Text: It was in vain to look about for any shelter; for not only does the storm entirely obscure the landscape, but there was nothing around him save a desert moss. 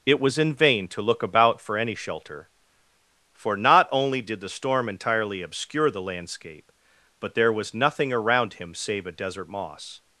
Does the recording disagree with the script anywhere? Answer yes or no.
yes